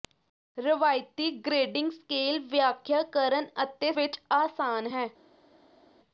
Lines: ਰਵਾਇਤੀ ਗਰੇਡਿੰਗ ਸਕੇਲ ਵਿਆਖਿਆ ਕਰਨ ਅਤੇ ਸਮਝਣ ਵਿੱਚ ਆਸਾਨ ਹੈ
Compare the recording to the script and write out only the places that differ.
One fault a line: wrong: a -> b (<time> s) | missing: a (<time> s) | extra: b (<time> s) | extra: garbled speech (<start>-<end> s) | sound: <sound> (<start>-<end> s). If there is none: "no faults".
missing: ਸਮਝਣ (3.9 s)